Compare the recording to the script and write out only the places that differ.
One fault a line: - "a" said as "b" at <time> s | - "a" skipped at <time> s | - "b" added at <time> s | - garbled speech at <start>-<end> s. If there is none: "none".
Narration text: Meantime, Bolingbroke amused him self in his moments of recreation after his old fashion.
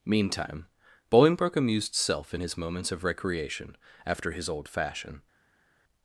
- "him" skipped at 1.9 s